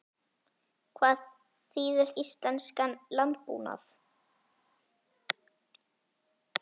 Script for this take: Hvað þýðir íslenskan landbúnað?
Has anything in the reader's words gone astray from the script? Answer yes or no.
no